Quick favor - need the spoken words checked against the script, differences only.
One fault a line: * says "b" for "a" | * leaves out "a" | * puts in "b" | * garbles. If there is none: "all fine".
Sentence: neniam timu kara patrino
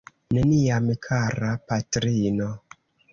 * leaves out "timu"